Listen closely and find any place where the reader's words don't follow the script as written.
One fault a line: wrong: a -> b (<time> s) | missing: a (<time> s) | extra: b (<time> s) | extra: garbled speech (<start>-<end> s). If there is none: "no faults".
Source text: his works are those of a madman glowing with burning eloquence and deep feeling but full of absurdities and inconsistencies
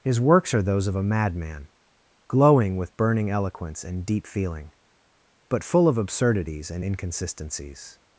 no faults